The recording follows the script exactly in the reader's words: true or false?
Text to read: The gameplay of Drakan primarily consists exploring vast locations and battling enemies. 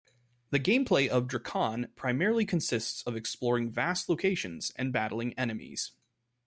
false